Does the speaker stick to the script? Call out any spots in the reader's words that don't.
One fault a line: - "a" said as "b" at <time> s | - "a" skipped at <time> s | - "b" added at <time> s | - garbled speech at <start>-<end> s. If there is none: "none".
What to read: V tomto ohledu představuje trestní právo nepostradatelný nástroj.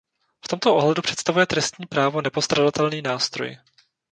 none